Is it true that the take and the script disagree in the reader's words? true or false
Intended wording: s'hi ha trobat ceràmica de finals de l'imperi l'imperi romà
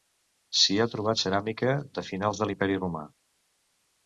true